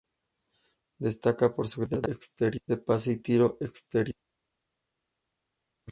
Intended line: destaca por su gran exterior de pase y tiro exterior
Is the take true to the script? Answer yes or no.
yes